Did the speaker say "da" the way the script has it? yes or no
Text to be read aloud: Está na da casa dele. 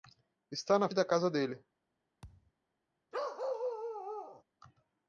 yes